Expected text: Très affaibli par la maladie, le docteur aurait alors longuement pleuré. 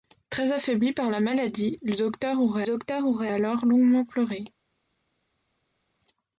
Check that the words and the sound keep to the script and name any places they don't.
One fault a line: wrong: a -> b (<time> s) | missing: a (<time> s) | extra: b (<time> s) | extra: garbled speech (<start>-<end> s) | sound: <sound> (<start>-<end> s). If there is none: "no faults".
extra: docteur aurait (2.6 s)